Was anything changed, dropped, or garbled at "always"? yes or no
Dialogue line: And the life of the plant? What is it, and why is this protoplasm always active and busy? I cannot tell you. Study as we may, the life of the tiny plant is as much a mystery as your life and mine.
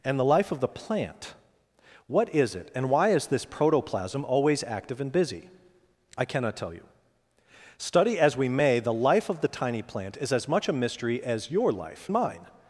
no